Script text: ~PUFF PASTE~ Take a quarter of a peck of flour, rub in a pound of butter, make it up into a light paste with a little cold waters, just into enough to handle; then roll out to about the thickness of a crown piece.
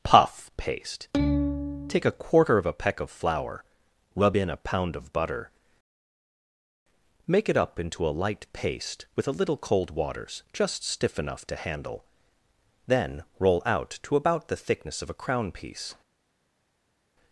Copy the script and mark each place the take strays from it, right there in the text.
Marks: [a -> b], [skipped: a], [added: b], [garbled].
~PUFF PASTE~ Take a quarter of a peck of flour, rub in a pound of butter, make it up into a light paste with a little cold waters, just [into -> stiff] enough to handle; then roll out to about the thickness of a crown piece.